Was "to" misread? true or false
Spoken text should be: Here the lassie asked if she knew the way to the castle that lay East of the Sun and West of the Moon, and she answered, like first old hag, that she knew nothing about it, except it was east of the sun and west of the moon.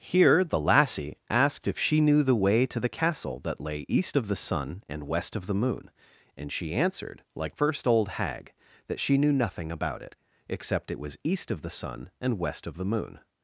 false